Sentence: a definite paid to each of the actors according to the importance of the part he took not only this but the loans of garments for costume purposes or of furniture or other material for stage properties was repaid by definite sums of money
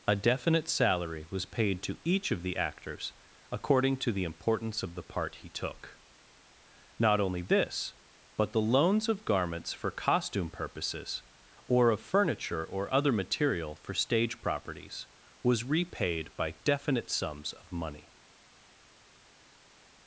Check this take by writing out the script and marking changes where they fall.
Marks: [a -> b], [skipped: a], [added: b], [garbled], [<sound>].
a definite [added: salary was] paid to each of the actors according to the importance of the part he took not only this but the loans of garments for costume purposes or of furniture or other material for stage properties was repaid by definite sums of money